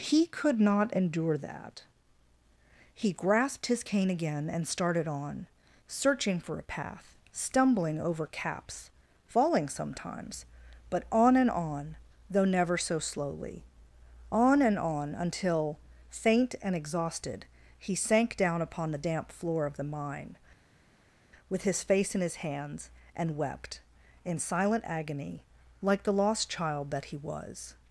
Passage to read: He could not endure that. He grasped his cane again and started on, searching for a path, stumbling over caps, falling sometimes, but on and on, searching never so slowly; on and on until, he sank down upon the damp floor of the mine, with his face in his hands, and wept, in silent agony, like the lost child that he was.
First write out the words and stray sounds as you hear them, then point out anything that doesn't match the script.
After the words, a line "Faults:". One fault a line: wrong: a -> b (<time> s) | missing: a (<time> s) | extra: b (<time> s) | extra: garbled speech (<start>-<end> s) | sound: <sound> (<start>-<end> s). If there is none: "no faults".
He could not endure that. He grasped his cane again and started on, searching for a path, stumbling over caps, falling sometimes, but on and on, though never so slowly; on and on until, faint and exhausted, he sank down upon the damp floor of the mine, with his face in his hands, and wept, in silent agony, like the lost child that he was.
Faults:
wrong: searching -> though (12.3 s)
extra: faint and exhausted (16.1 s)